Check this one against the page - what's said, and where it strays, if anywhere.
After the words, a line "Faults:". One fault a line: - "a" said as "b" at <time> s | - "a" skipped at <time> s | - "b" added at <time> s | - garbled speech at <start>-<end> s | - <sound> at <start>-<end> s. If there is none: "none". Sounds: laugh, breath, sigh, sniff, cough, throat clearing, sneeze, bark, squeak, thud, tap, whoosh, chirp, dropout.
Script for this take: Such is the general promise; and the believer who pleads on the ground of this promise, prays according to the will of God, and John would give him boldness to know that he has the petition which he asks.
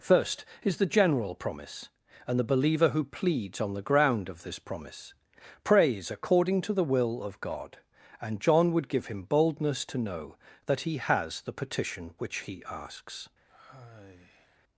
First is the general promise; and the believer who pleads on the ground of this promise, prays according to the will of God, and John would give him boldness to know that he has the petition which he asks.
Faults:
- "Such" said as "First" at 0.0 s
- sigh at 13.5-14.6 s